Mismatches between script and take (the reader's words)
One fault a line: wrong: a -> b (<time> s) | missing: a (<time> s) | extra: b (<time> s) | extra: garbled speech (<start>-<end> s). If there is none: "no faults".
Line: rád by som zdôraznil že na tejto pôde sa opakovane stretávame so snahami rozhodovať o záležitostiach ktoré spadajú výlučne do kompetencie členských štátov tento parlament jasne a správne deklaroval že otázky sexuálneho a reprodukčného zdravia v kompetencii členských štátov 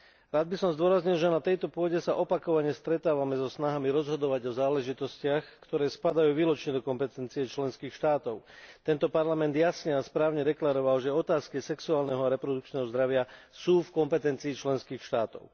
extra: sú (13.5 s)